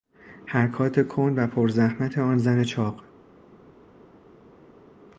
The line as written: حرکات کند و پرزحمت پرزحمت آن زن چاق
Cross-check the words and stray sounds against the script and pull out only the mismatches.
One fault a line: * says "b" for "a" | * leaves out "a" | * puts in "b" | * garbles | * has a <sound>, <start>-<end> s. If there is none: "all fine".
* leaves out "پرزحمت"